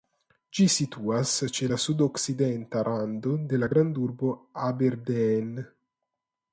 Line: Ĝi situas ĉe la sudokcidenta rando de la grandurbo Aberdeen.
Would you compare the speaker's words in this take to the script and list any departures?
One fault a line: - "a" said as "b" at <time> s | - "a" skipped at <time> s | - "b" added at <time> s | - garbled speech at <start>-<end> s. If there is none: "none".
none